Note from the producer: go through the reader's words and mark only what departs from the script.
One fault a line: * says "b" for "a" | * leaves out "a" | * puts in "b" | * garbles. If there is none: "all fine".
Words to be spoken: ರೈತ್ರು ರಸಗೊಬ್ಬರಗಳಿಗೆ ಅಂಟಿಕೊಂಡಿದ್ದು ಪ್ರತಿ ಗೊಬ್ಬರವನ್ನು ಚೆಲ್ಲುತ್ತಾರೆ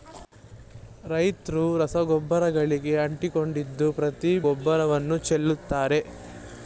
all fine